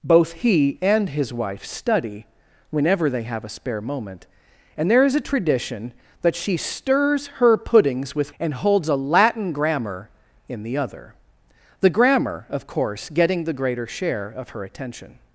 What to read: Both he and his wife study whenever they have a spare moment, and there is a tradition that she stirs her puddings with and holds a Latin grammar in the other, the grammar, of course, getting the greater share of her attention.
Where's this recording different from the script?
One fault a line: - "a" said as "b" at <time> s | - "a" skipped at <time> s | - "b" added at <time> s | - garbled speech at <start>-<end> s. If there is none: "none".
none